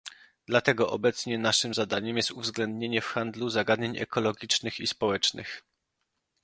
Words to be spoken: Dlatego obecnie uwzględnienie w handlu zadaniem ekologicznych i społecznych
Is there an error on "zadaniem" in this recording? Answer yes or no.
yes